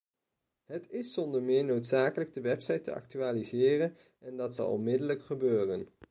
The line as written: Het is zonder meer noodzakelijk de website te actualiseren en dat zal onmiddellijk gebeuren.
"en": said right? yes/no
yes